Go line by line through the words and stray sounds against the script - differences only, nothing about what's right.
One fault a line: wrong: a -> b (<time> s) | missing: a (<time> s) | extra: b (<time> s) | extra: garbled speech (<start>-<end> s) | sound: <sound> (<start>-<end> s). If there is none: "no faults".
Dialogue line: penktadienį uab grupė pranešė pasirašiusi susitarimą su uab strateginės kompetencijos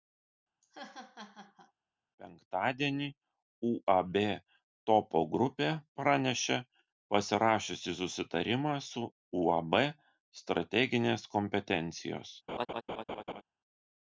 sound: laugh (0.6-1.7 s)
extra: topo (4.9 s)
sound: laugh (12.5-13.4 s)